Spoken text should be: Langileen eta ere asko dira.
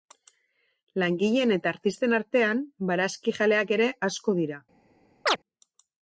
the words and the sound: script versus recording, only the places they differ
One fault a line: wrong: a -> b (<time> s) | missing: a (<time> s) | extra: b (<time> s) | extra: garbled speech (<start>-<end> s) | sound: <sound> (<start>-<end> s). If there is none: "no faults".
extra: artisten artean barazkijaleak (1.7 s)
sound: chirp (5.3-5.4 s)